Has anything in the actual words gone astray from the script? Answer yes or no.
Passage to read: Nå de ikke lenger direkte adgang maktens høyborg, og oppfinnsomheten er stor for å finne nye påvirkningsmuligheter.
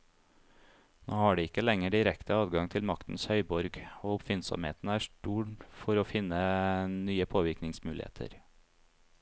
yes